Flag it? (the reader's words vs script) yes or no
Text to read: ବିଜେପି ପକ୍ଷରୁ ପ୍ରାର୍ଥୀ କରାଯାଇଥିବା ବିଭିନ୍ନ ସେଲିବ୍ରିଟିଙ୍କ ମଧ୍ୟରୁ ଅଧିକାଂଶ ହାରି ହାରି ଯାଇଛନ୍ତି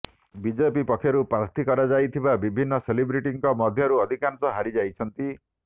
yes